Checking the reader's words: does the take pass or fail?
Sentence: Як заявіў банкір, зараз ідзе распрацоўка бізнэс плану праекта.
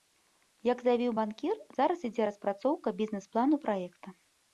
pass